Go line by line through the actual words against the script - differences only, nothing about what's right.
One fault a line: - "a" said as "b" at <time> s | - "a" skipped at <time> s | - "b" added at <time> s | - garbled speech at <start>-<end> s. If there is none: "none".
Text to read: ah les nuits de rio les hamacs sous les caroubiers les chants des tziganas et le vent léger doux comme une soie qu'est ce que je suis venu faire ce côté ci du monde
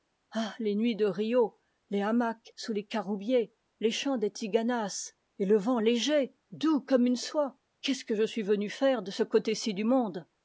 - "de" added at 9.0 s